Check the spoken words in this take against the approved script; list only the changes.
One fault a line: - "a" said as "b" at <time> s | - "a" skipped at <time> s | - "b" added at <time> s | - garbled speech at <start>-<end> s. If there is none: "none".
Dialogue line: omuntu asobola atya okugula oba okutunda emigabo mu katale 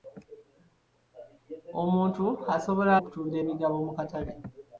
- "atya okugula oba" skipped at 2.9 s